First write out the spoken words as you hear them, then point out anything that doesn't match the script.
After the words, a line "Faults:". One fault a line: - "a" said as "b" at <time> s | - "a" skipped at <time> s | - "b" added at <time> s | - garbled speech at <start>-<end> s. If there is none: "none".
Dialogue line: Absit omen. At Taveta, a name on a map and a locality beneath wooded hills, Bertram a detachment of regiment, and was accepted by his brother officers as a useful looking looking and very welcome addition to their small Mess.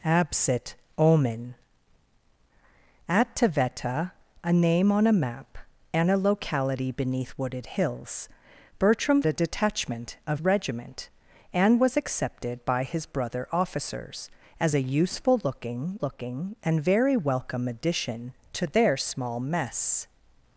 Absit omen. At Taveta, a name on a map and a locality beneath wooded hills, Bertram a detachment of regiment, and was accepted by his brother officers as a useful looking looking and very welcome addition to their small Mess.
Faults:
none